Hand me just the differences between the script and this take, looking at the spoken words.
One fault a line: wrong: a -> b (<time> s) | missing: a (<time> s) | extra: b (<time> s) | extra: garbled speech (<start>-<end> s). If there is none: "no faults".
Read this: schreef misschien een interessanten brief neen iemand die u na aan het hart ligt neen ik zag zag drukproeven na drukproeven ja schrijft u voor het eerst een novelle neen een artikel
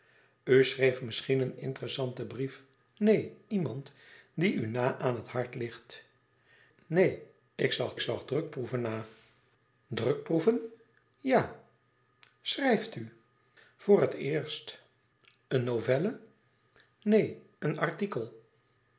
no faults